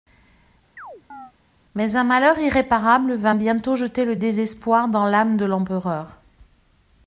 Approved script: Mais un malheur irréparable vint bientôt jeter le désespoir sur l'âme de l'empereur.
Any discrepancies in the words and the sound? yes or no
yes